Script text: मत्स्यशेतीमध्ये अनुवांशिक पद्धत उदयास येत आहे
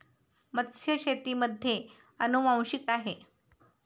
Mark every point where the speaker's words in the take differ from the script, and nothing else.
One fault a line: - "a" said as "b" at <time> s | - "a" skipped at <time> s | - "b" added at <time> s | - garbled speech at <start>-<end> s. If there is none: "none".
- "पद्धत उदयास येत" skipped at 2.9 s